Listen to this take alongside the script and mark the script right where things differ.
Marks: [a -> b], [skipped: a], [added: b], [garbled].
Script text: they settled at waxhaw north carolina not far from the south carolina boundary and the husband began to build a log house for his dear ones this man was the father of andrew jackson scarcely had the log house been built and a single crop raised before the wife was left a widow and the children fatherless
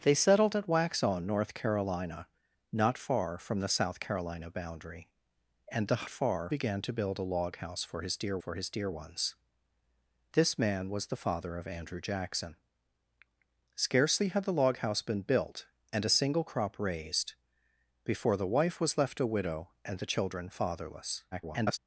they settled at waxhaw north carolina not far from the south carolina boundary and the [husband -> far] began to build a log house for his dear [added: for his dear] ones this man was the father of andrew jackson scarcely had the log house been built and a single crop raised before the wife was left a widow and the children fatherless [garbled]